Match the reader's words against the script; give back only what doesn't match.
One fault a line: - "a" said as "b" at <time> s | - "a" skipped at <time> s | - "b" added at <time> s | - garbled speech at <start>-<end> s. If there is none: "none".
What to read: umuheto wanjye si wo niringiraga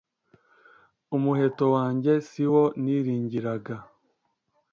none